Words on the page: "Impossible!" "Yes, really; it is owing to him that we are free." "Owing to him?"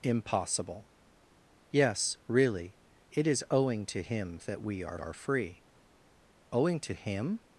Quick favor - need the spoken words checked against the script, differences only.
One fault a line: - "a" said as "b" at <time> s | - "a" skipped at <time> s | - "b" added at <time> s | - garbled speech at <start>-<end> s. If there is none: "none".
- "are" added at 4.9 s